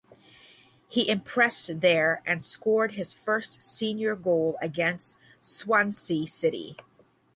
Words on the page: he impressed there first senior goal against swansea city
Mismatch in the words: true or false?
true